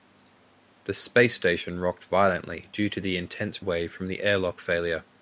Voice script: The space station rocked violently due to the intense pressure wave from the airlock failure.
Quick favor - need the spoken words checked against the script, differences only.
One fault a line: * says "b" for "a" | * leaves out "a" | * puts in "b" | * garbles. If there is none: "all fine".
* leaves out "pressure"